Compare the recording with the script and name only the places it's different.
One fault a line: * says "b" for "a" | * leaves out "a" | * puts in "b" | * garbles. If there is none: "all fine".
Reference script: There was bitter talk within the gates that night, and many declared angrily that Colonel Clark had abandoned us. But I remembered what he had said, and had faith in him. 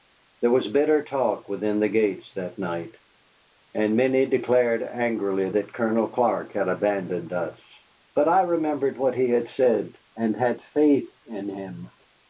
all fine